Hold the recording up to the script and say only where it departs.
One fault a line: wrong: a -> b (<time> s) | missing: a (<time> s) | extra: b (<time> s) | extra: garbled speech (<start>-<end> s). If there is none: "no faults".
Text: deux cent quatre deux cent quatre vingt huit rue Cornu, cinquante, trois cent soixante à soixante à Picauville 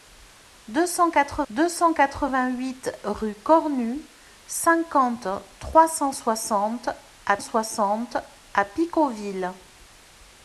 no faults